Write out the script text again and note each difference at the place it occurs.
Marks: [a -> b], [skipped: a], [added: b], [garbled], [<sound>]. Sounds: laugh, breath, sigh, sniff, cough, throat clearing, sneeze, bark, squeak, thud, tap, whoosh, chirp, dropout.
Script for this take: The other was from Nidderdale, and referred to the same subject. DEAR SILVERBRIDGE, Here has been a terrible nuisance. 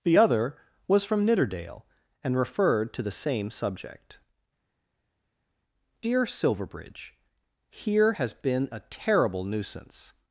The other was from Nidderdale, and referred to the same subject. DEAR SILVERBRIDGE, Here has been a terrible nuisance.